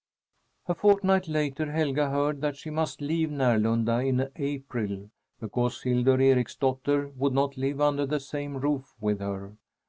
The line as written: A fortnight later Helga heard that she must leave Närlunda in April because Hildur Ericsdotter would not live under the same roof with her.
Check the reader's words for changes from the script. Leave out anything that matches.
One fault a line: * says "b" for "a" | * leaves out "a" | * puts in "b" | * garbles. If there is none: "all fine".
all fine